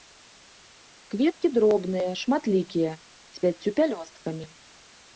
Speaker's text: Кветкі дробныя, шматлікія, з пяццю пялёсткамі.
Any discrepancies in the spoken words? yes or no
no